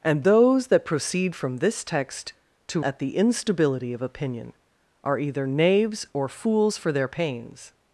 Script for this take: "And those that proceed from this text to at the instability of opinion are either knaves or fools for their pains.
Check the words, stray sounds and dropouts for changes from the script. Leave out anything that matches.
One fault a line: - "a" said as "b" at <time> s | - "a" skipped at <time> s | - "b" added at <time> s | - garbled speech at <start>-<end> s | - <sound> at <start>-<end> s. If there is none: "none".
none